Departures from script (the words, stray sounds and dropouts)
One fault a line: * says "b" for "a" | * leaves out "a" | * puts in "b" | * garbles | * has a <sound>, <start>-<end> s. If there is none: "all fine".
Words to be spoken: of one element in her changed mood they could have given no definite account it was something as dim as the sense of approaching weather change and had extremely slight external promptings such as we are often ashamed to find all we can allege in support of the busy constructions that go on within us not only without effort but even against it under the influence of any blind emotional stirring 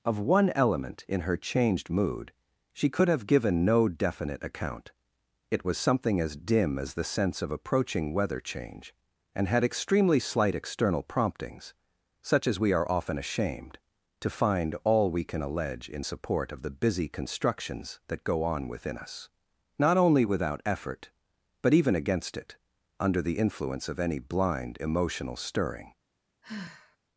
* says "she" for "they"
* has a sigh, 26.4-27.0 s